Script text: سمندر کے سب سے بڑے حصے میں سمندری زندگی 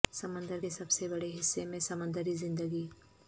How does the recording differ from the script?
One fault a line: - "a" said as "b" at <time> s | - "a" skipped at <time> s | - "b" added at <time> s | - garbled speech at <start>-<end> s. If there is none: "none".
none